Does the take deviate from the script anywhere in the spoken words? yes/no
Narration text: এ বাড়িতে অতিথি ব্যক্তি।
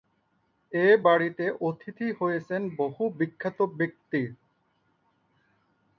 yes